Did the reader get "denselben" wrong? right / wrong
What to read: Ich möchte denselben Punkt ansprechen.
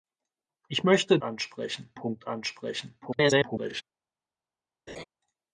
wrong